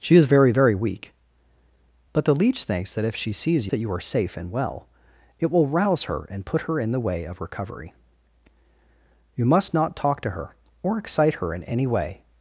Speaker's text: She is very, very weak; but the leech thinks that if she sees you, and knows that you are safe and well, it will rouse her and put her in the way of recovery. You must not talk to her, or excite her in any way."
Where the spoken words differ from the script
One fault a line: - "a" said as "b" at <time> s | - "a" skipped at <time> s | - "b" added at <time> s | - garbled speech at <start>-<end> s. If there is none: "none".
- "you and knows" skipped at 3.7 s